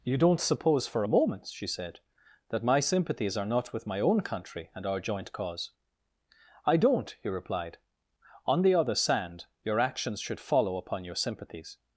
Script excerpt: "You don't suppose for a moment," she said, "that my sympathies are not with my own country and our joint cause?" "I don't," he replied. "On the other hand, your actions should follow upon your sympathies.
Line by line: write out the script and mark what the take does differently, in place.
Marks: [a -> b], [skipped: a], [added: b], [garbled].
"You don't suppose for a moment," she said, "that my sympathies are not with my own country and our joint cause?" "I don't," he replied. "On the other [hand, -> sand] your actions should follow upon your sympathies.